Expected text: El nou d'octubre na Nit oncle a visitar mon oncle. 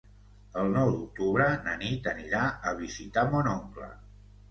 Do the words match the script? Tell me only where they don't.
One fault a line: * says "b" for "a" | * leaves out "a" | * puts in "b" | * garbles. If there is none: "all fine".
* says "anirà" for "oncle"